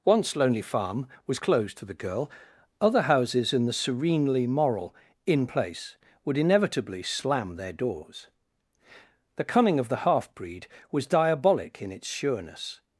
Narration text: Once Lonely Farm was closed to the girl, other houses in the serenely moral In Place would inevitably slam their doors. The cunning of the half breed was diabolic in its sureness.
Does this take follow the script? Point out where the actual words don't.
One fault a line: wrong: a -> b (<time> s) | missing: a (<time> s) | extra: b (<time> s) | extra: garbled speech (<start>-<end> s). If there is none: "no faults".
no faults